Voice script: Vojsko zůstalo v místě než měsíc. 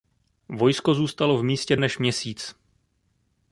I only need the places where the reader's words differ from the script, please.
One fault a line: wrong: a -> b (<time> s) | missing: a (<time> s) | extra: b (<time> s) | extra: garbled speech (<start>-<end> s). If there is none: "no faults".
no faults